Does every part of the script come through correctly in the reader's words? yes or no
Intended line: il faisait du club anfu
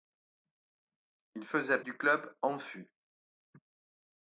yes